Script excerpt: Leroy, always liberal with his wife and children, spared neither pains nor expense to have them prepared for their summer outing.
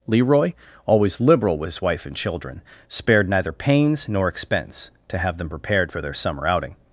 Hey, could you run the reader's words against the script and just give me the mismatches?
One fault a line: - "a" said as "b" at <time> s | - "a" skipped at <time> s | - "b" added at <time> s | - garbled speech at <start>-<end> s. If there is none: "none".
none